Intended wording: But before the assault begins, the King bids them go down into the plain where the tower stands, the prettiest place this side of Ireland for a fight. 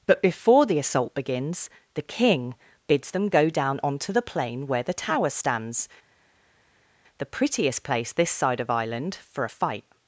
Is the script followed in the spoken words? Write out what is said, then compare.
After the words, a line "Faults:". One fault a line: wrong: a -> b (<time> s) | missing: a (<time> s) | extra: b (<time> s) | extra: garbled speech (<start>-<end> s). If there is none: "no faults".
But before the assault begins, the King bids them go down onto the plain where the tower stands, the prettiest place this side of Ireland for a fight.
Faults:
wrong: into -> onto (3.8 s)